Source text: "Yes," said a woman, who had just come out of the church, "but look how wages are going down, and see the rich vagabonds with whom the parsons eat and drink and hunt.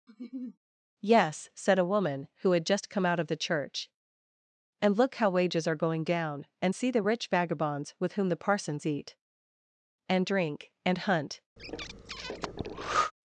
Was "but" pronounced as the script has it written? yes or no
no